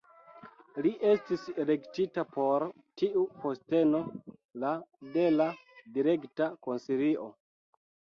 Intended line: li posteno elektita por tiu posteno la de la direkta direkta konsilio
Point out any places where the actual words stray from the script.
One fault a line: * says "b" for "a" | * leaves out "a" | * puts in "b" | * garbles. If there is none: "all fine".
* says "estis" for "posteno"
* leaves out "direkta"